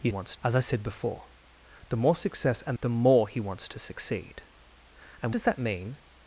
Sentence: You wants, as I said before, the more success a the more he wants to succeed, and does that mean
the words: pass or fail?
pass